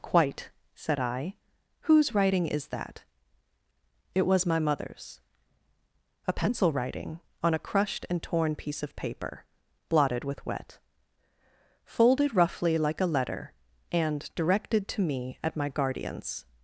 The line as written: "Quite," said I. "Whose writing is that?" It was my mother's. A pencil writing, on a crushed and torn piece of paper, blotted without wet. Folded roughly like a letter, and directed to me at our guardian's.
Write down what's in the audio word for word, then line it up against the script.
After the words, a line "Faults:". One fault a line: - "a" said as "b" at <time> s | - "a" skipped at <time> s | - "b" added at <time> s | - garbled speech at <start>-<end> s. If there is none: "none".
"Quite," said I. "Whose writing is that?" It was my mother's. A pencil writing, on a crushed and torn piece of paper, blotted with wet. Folded roughly like a letter, and directed to me at my guardian's.
Faults:
- "without" said as "with" at 10.2 s
- "our" said as "my" at 15.5 s